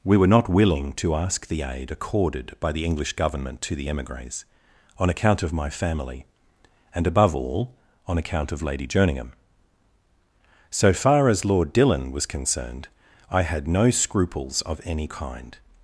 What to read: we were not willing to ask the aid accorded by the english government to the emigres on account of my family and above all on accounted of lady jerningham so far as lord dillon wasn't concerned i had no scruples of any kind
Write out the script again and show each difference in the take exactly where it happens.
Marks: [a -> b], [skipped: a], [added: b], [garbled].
we were not willing to ask the aid accorded by the english government to the emigres on account of my family and above all on [accounted -> account] of lady jerningham so far as lord dillon [wasn't -> was] concerned i had no scruples of any kind